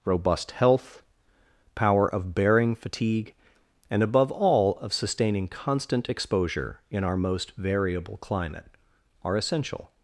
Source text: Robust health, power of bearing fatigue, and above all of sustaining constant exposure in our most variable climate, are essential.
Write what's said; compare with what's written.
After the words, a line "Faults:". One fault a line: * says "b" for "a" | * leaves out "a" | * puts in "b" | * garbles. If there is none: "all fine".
Robust health, power of bearing fatigue, and above all of sustaining constant exposure in our most variable climate, are essential.
Faults:
all fine